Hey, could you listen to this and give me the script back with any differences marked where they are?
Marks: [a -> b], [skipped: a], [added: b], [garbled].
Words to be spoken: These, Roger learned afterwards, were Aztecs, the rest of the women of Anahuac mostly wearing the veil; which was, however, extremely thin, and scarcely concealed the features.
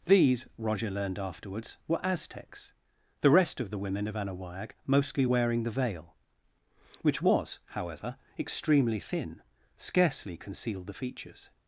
These, Roger learned afterwards, were Aztecs, the rest of the women of Anahuac mostly wearing the veil; which was, however, extremely thin, [skipped: and] scarcely concealed the features.